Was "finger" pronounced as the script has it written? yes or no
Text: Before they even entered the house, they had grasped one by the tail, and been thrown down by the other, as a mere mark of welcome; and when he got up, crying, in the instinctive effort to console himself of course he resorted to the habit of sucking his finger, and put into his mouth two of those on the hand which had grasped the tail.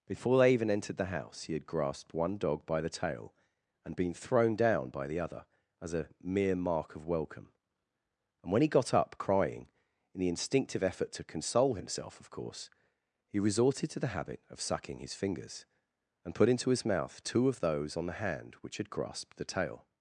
no